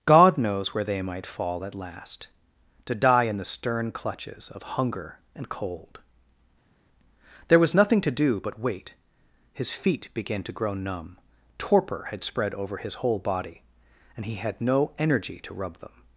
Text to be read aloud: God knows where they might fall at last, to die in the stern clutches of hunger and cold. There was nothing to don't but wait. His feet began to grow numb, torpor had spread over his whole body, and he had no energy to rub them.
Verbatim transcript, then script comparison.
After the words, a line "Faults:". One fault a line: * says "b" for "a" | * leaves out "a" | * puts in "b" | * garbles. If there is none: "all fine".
God knows where they might fall at last, to die in the stern clutches of hunger and cold. There was nothing to do but wait. His feet began to grow numb, torpor had spread over his whole body, and he had no energy to rub them.
Faults:
* says "do" for "don't"